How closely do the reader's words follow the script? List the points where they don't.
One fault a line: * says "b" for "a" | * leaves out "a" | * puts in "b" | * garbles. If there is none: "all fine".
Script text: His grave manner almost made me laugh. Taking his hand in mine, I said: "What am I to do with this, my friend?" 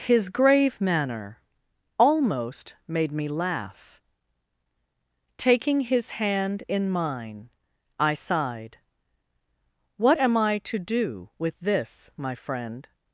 * says "sighed" for "said"